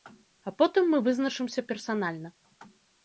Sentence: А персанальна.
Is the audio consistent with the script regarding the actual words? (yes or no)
no